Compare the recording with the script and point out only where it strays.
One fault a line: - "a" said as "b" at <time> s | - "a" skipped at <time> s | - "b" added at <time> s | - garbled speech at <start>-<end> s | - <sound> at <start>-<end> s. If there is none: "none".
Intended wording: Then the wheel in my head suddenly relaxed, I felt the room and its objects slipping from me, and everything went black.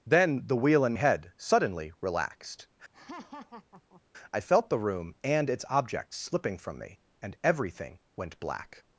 - "my" skipped at 0.9 s
- laugh at 2.9-4.0 s